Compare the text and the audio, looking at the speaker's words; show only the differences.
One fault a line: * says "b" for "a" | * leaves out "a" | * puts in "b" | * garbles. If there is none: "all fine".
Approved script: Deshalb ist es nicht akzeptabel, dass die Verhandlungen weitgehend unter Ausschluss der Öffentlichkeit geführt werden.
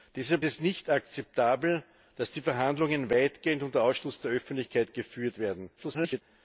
* leaves out "ist"
* garbles